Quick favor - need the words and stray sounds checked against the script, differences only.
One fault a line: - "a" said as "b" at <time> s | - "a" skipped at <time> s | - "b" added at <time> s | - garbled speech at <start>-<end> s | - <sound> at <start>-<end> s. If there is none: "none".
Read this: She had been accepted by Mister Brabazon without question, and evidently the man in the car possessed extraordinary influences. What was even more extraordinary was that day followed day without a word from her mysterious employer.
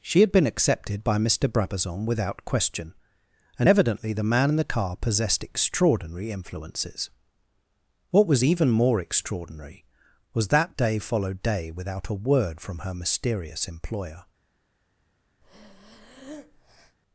- breath at 15.4-17.0 s